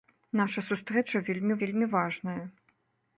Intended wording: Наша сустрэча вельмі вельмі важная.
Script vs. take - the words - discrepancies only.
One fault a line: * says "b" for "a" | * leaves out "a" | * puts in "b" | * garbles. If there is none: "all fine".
all fine